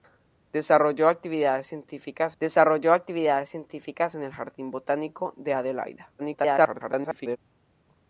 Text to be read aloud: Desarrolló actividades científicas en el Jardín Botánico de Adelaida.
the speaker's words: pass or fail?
fail